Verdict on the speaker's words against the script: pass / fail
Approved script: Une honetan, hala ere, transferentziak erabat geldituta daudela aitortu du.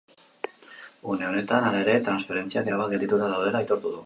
pass